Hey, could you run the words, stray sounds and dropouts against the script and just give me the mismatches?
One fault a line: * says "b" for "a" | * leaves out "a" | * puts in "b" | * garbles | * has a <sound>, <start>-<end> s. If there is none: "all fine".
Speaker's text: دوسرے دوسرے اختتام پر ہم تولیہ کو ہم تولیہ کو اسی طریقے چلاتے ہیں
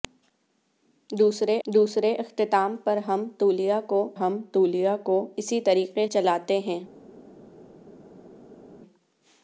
all fine